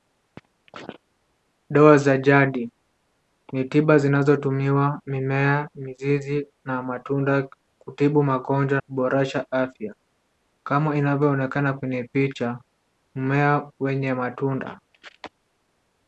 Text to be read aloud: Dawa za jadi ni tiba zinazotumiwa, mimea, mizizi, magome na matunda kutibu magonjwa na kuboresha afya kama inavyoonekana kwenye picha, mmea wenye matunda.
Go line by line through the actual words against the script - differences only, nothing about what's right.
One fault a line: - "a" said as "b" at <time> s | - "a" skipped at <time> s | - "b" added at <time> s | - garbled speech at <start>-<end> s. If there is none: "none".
- "magome" skipped at 6.5 s
- "na" skipped at 8.8 s